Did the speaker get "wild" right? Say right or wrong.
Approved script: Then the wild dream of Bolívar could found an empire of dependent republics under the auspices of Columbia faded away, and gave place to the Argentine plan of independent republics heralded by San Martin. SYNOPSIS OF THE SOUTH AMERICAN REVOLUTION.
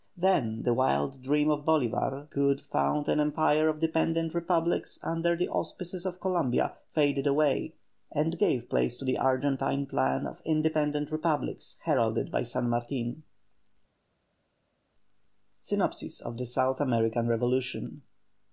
right